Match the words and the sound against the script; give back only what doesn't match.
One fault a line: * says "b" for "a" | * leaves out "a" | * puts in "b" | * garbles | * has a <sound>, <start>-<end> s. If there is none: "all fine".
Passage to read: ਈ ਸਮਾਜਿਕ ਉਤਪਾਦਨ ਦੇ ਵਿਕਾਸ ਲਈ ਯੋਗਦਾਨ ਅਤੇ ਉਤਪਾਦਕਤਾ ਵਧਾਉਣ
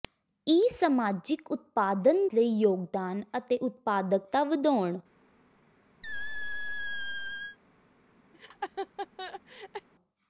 * leaves out "ਦੇ ਵਿਕਾਸ"
* has a squeak, 6.0-7.6 s
* has a laugh, 8.3-9.9 s